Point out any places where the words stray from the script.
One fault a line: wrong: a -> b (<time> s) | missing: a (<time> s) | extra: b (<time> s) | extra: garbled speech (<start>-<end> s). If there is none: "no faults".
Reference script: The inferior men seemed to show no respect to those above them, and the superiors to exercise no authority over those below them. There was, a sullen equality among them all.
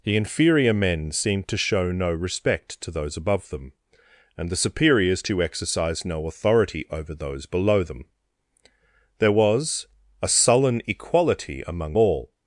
missing: them (12.0 s)